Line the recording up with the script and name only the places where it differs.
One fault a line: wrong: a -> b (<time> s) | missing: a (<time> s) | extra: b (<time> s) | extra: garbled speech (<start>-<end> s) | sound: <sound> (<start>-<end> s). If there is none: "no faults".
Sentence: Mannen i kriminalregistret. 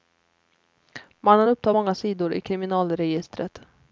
extra: upptar många sidor (1.5 s)